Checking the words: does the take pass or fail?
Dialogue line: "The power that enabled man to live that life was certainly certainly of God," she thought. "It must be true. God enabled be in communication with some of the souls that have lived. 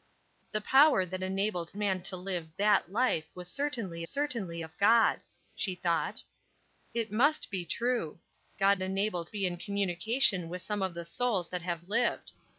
pass